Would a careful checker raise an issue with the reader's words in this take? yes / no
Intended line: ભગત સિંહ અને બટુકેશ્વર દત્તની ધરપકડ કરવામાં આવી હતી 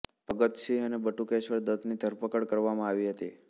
no